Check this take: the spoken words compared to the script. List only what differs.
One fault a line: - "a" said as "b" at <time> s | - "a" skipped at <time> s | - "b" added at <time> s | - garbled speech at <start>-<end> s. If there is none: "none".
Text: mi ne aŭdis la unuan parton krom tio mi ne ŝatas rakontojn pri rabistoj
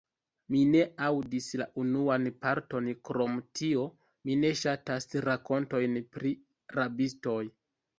none